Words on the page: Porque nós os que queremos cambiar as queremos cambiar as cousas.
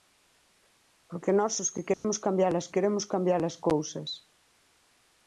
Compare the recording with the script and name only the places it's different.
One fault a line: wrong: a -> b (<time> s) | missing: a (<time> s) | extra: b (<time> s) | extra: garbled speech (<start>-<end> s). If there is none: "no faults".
no faults